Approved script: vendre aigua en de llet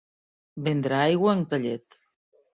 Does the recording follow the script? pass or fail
pass